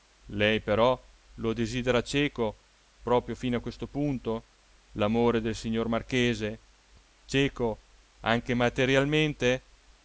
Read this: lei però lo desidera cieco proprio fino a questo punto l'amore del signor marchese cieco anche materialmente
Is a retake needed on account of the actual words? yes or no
no